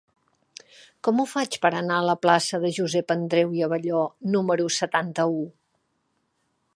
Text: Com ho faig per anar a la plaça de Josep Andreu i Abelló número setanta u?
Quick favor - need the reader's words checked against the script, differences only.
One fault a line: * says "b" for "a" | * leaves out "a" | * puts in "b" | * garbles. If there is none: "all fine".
all fine